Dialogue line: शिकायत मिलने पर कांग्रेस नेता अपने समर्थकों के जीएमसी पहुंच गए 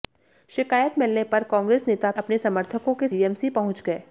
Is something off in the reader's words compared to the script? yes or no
no